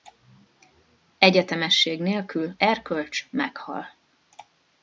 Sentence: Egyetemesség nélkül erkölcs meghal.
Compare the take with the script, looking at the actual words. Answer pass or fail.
pass